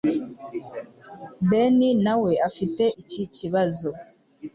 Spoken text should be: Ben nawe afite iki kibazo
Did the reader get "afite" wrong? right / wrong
right